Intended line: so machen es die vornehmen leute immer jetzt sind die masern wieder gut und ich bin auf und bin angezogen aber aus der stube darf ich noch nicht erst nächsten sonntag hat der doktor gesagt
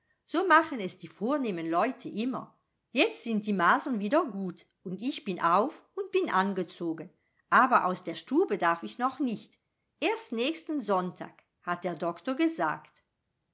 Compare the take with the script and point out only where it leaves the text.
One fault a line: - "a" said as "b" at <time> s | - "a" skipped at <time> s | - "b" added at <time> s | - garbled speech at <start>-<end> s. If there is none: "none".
none